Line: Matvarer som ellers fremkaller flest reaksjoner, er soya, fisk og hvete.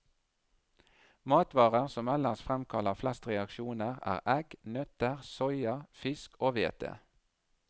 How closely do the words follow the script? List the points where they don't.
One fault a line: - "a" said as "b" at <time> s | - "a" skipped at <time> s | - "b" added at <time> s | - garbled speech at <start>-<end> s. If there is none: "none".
- "egg nøtter" added at 4.4 s